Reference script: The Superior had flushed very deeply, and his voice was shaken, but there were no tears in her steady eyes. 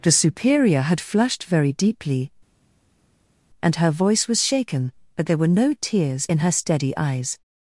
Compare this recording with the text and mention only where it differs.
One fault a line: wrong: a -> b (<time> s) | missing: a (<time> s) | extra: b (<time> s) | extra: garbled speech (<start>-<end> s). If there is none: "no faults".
wrong: his -> her (3.8 s)